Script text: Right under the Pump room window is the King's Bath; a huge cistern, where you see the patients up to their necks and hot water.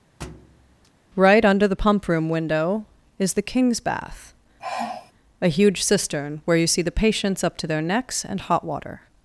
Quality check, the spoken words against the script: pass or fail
pass